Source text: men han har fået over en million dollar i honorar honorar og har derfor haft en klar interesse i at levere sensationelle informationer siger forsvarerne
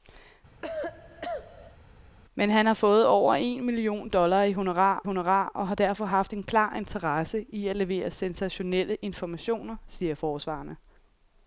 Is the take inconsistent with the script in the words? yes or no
no